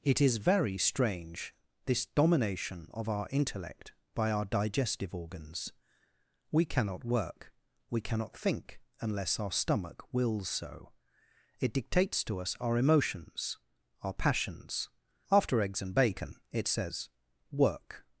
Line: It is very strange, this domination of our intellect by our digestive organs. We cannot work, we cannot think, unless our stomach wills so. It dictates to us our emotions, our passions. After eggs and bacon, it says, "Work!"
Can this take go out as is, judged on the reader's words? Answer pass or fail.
pass